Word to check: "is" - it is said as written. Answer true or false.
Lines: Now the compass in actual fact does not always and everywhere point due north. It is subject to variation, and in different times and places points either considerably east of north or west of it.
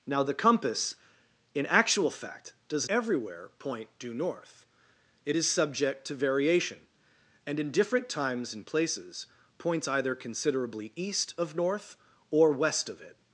true